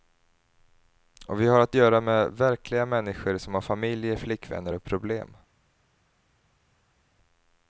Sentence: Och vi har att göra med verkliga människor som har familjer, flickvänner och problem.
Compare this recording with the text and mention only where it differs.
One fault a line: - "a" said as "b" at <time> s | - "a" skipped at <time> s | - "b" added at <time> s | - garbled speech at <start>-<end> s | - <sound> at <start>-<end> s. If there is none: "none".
none